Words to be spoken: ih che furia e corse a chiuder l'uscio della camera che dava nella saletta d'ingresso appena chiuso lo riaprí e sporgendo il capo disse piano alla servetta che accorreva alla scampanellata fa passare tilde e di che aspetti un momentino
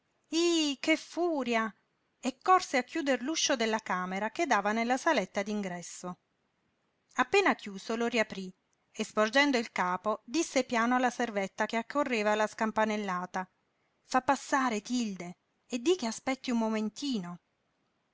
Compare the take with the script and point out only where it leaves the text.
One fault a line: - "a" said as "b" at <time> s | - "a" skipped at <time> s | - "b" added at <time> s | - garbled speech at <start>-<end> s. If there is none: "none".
none